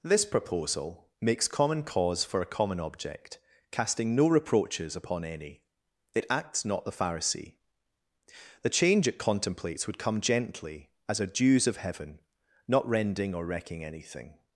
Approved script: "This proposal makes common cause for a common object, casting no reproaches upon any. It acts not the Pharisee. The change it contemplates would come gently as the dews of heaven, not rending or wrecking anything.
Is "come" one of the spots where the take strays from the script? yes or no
no